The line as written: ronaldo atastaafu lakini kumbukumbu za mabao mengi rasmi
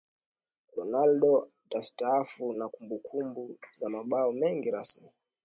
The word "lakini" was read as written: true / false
false